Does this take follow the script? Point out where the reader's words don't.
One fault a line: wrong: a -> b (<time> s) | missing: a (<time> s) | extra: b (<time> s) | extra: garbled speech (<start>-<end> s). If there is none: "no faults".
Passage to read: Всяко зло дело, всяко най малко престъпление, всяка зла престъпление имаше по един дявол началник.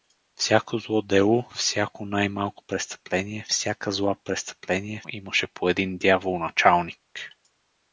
no faults